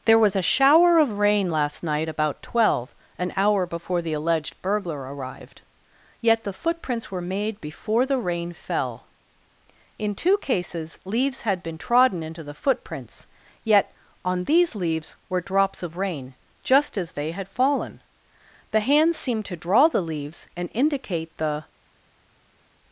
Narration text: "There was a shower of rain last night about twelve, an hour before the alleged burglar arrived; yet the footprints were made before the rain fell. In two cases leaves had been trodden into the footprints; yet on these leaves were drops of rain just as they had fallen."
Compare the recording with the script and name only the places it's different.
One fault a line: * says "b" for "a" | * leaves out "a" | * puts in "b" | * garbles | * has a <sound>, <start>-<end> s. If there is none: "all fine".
* puts in "The hands seemed to draw the leaves and indicate the"